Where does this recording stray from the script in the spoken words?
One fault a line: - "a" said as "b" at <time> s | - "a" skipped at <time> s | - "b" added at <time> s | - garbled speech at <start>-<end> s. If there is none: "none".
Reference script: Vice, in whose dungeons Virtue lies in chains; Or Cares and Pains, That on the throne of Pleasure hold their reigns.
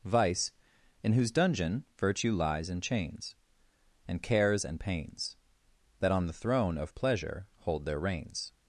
- "dungeons" said as "dungeon" at 1.3 s
- "Or" said as "And" at 4.1 s